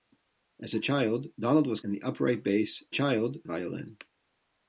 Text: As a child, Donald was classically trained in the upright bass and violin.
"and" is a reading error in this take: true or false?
true